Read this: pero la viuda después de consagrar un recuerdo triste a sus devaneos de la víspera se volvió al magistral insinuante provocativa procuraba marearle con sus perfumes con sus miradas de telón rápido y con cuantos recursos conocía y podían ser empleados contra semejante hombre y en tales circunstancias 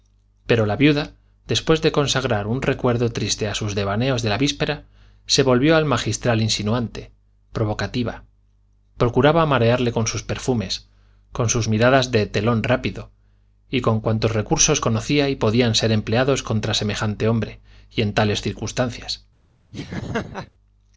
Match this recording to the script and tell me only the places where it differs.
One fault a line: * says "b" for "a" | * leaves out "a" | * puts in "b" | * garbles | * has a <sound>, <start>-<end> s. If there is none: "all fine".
* has a laugh, 19.7-20.5 s